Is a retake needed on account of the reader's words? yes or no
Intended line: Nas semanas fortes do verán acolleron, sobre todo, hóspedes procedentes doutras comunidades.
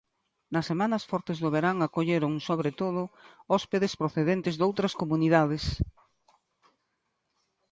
no